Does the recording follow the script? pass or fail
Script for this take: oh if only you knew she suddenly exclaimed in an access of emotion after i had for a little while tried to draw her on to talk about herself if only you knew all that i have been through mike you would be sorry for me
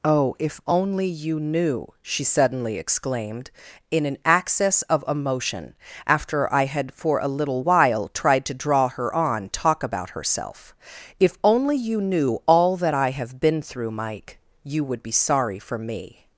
fail